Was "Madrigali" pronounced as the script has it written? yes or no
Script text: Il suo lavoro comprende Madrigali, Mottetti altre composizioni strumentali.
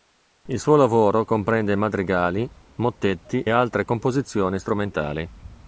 yes